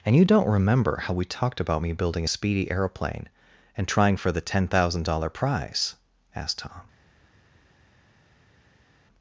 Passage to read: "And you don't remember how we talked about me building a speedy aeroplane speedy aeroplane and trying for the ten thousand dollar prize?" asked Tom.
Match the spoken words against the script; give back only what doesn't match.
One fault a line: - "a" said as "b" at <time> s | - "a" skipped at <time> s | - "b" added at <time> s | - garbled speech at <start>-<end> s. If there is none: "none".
- "speedy aeroplane" skipped at 3.3 s